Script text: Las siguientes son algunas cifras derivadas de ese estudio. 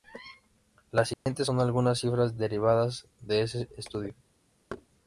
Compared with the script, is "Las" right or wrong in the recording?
right